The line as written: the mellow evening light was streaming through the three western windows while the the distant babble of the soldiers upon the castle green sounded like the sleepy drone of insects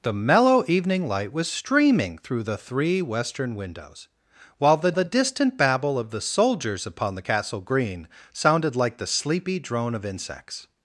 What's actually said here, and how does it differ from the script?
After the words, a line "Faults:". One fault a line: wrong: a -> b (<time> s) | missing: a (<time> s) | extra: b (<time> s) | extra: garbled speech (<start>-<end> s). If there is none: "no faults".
the mellow evening light was streaming through the three western windows while the the distant babble of the soldiers upon the castle green sounded like the sleepy drone of insects
Faults:
no faults